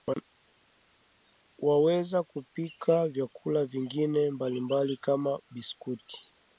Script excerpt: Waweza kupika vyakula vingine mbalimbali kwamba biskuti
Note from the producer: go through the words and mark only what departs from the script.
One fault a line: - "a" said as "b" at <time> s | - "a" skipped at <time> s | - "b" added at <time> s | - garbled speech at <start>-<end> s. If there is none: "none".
- "kwamba" said as "kama" at 5.0 s